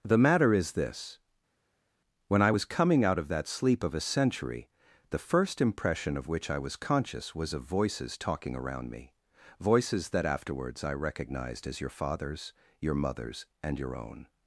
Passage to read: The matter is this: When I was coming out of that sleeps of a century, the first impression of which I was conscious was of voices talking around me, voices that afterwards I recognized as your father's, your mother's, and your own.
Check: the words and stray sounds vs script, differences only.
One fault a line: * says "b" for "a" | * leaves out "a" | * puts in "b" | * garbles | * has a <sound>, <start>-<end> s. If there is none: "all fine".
* says "sleep" for "sleeps"